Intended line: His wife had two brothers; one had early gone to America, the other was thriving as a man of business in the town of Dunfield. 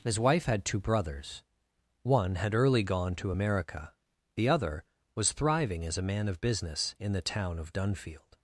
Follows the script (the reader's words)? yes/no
yes